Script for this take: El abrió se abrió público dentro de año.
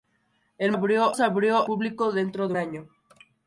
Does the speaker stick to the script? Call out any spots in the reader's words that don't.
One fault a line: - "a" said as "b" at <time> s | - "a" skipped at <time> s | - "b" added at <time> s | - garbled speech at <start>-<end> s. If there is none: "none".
none